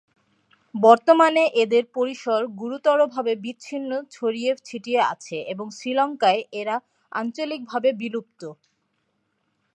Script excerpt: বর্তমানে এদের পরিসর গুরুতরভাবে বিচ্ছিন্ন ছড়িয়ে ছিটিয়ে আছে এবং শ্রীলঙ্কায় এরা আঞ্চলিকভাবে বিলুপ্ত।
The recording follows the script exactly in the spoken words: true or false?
true